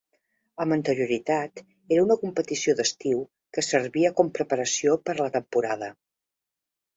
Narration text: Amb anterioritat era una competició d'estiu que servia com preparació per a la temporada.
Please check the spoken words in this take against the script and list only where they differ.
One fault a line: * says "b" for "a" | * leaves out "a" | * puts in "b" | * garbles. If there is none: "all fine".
all fine